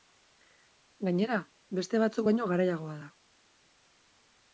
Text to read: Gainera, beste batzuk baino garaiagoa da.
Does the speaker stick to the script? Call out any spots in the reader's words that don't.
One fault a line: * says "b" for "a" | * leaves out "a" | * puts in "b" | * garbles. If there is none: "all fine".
all fine